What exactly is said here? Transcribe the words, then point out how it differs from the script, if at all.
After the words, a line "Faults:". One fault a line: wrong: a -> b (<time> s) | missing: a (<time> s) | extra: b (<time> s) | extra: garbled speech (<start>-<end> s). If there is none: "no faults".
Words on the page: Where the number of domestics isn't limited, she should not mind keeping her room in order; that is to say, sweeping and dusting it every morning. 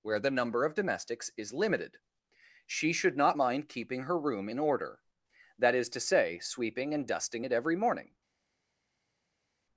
Where the number of domestics is limited, she should not mind keeping her room in order; that is to say, sweeping and dusting it every morning.
Faults:
wrong: isn't -> is (1.4 s)